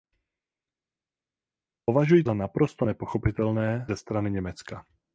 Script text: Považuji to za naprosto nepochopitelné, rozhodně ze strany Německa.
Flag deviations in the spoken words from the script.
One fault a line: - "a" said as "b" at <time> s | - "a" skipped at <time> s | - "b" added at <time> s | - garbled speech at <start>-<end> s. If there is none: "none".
- "to" skipped at 2.2 s
- "rozhodně" skipped at 3.9 s